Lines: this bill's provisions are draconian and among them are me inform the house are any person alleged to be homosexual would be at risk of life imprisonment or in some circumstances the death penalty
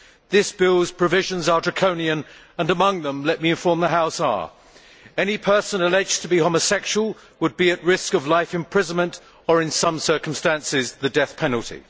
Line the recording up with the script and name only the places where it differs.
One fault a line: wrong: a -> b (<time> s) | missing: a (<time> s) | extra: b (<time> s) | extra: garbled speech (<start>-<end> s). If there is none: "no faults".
wrong: are -> let (3.3 s)